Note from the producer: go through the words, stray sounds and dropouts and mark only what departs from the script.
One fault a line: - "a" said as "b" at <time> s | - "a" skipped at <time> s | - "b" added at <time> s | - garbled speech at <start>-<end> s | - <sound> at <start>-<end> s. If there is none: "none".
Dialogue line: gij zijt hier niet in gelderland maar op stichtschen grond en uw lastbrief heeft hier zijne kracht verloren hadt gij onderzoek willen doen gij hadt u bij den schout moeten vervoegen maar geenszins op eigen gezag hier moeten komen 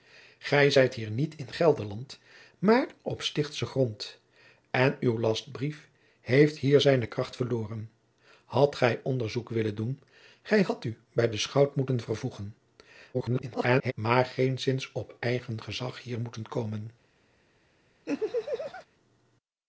- garbled speech at 13.1-13.9 s
- laugh at 18.1-18.9 s